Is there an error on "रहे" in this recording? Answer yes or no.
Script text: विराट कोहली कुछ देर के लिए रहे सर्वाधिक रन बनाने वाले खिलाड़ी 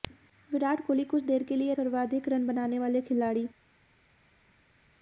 yes